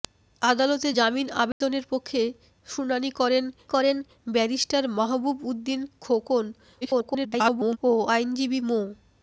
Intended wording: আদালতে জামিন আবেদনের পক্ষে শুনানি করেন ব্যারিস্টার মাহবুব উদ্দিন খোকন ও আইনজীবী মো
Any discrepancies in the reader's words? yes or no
yes